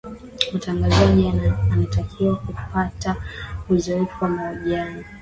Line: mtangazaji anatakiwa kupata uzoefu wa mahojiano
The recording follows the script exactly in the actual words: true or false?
true